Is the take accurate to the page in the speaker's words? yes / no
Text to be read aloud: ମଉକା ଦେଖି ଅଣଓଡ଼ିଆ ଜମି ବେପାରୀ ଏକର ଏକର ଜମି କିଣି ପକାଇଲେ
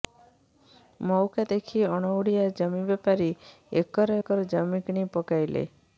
yes